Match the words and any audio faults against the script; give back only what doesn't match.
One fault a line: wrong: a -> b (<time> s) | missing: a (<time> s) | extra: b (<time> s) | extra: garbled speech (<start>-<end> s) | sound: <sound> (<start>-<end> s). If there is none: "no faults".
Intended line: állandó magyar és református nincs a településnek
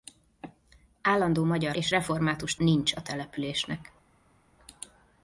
no faults